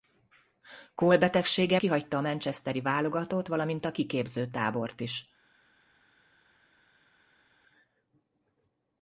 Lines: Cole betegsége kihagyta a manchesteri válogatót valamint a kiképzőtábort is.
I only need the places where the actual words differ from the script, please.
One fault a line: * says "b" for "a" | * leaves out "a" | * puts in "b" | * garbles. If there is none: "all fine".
all fine